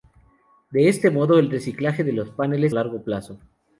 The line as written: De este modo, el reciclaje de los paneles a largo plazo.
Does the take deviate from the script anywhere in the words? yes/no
no